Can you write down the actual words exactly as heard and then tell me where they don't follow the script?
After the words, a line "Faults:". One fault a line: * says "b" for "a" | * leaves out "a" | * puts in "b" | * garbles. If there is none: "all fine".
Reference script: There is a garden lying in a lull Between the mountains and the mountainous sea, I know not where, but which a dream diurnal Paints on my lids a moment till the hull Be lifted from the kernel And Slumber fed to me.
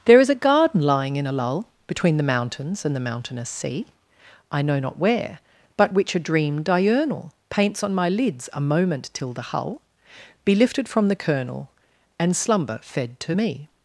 There is a garden lying in a lull Between the mountains and the mountainous sea, I know not where, but which a dream diurnal Paints on my lids a moment till the hull Be lifted from the kernel And Slumber fed to me.
Faults:
all fine